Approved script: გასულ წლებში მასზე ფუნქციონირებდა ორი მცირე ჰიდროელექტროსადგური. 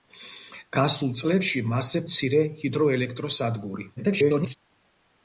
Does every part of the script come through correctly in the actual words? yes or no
no